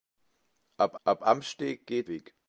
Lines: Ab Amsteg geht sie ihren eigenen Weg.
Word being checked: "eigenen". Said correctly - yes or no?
no